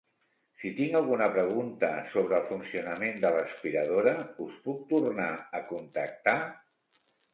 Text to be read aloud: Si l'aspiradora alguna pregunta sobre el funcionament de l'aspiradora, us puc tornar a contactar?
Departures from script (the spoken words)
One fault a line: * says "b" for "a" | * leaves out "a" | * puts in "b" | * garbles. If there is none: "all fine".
* says "tinc" for "l'aspiradora"